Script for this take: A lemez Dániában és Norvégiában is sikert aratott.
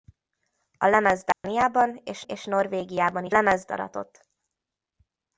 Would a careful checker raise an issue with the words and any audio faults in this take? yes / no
yes